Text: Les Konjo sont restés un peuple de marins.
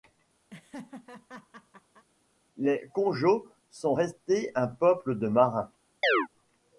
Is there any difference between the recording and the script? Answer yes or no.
no